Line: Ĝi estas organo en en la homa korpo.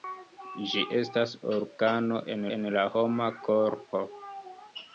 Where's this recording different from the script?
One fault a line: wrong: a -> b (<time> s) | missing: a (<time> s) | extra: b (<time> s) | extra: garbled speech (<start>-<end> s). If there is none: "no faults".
no faults